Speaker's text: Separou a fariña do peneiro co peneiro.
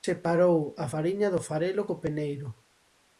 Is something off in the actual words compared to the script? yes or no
yes